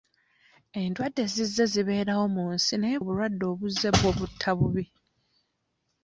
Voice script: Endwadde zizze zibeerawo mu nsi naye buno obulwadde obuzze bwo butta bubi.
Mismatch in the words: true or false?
true